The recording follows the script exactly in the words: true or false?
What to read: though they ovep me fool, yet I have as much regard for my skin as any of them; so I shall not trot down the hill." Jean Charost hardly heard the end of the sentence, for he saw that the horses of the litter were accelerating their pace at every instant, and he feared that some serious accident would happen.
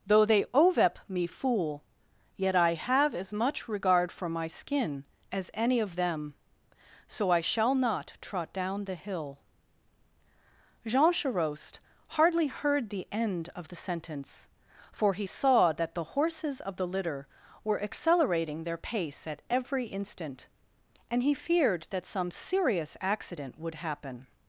true